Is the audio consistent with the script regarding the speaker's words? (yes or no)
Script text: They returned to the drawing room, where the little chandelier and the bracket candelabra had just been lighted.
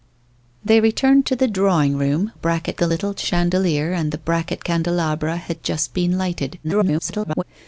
no